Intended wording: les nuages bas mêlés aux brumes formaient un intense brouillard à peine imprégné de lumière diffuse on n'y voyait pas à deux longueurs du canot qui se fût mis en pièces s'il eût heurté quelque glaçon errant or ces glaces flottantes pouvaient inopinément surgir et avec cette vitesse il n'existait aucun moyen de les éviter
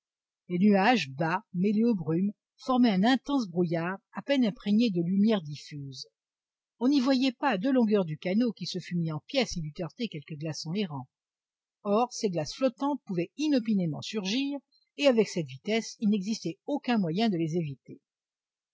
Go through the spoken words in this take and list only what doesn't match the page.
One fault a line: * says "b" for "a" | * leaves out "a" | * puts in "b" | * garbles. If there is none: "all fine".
all fine